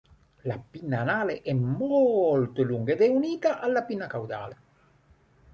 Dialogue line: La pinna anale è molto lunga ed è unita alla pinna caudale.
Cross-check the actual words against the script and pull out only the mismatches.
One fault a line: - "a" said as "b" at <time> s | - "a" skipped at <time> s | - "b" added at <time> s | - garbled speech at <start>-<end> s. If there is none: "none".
none